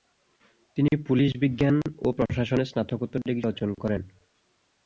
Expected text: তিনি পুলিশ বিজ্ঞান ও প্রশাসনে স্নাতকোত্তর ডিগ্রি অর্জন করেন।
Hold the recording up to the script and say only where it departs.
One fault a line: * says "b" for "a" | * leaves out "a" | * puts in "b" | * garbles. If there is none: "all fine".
all fine